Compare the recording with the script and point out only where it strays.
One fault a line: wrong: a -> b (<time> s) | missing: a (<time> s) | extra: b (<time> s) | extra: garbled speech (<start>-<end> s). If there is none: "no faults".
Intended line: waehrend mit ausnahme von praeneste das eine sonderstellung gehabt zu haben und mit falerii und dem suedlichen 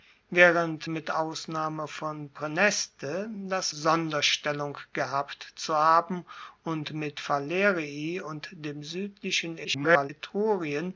missing: eine (3.7 s)
extra: garbled speech (9.6-10.1 s)